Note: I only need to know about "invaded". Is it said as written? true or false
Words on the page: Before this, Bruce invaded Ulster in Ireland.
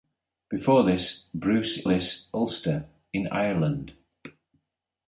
false